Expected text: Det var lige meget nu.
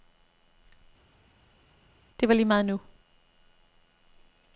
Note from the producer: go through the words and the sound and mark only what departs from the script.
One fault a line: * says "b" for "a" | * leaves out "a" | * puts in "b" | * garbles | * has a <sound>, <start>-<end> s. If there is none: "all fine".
all fine